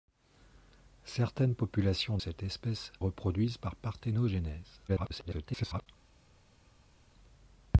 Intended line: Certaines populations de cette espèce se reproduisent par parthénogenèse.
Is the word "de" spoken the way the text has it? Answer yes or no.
no